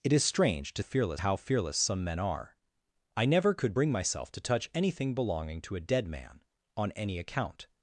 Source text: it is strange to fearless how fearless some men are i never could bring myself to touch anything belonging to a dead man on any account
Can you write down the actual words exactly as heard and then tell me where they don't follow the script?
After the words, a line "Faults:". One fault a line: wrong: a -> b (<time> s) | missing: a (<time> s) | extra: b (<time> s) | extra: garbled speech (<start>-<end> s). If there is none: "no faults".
it is strange to fearless how fearless some men are i never could bring myself to touch anything belonging to a dead man on any account
Faults:
no faults